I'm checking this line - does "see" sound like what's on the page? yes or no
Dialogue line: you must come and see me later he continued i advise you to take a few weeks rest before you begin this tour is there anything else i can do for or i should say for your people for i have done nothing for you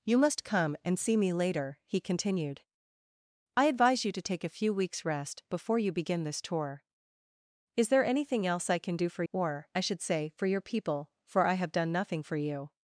yes